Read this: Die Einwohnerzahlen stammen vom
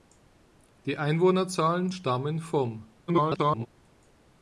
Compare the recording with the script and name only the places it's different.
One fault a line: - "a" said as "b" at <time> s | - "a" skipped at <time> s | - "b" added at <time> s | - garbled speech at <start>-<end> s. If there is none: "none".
- garbled speech at 3.1-3.7 s